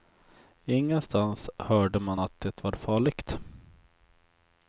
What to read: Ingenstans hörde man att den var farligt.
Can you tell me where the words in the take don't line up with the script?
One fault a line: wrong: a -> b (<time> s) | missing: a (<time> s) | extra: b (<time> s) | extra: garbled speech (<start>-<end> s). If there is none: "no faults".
wrong: den -> det (2.4 s)